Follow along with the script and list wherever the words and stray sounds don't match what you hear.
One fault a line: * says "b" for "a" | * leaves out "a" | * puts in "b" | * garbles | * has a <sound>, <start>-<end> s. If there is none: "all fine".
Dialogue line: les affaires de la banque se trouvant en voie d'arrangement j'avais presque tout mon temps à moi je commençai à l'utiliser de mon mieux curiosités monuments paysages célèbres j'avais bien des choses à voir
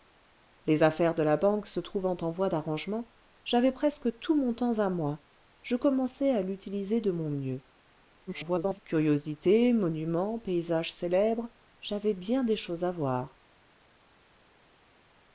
* garbles